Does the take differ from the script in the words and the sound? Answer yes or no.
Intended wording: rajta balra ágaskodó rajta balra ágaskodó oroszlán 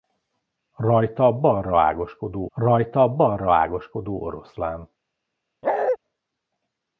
yes